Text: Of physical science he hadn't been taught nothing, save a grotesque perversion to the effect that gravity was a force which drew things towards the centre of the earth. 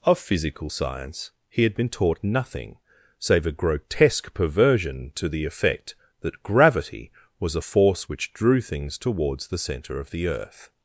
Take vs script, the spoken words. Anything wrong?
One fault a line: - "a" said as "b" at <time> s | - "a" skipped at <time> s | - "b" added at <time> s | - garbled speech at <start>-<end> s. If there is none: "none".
- "hadn't" said as "had" at 1.6 s